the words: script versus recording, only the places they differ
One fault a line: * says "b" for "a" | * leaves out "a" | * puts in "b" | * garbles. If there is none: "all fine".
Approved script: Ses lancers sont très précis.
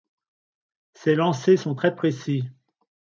all fine